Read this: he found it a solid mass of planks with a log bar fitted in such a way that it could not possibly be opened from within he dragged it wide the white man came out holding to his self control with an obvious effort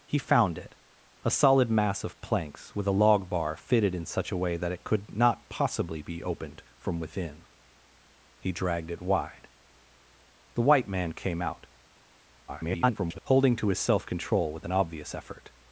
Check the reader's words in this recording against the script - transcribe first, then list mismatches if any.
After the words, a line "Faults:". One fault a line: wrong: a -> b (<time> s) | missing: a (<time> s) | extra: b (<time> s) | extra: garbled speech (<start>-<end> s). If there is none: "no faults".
he found it a solid mass of planks with a log bar fitted in such a way that it could not possibly be opened from within he dragged it wide the white man came out [garbled] holding to his self control with an obvious effort
Faults:
extra: garbled speech (12.5-13.2 s)